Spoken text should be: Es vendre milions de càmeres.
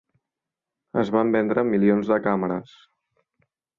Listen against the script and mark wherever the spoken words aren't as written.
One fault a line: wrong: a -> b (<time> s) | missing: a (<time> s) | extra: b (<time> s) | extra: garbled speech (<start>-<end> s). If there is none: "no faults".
extra: van (1.1 s)